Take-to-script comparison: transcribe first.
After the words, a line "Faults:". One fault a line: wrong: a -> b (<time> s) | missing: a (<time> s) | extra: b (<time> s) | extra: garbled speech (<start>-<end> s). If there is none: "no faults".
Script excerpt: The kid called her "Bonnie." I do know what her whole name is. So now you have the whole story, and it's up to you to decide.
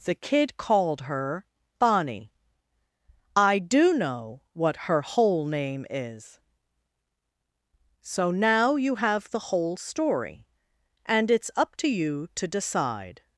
The kid called her "Bonnie." I do know what her whole name is. So now you have the whole story, and it's up to you to decide.
Faults:
no faults